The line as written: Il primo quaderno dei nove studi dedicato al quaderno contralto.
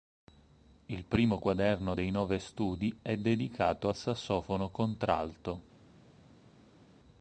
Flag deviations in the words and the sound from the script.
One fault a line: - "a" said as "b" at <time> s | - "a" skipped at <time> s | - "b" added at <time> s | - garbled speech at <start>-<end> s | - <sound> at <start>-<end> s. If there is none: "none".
- "è" added at 3.0 s
- "quaderno" said as "sassofono" at 3.9 s